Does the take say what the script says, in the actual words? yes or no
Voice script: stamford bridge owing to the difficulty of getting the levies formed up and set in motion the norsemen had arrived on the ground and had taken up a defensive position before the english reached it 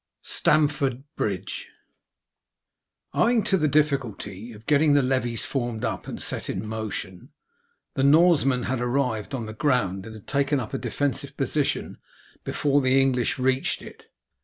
yes